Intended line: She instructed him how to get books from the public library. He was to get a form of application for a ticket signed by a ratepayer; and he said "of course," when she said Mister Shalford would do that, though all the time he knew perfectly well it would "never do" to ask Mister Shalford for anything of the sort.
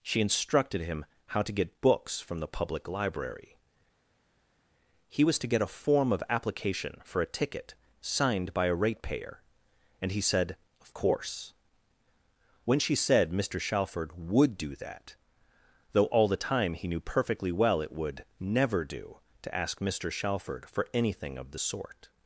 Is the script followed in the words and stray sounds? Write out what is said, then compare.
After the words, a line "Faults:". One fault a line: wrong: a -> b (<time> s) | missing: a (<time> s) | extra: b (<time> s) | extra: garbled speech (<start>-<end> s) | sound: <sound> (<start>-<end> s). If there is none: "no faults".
She instructed him how to get books from the public library. He was to get a form of application for a ticket signed by a ratepayer; and he said "of course," when she said Mister Shalford would do that, though all the time he knew perfectly well it would "never do" to ask Mister Shalford for anything of the sort.
Faults:
no faults